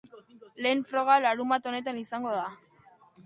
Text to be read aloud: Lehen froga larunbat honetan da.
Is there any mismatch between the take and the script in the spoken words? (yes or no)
yes